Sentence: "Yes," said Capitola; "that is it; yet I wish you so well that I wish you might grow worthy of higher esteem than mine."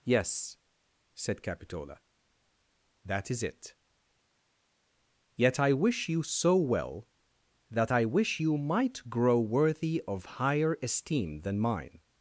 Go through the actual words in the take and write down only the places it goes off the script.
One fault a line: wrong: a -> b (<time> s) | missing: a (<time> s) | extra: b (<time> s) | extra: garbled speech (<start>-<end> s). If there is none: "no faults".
no faults